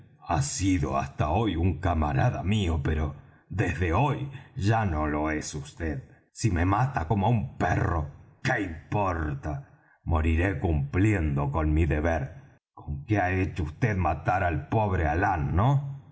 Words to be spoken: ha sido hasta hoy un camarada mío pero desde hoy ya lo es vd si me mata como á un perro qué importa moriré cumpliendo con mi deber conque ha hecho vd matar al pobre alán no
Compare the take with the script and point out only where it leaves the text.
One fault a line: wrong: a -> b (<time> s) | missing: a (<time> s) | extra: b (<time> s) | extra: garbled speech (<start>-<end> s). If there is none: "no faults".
extra: no (4.8 s)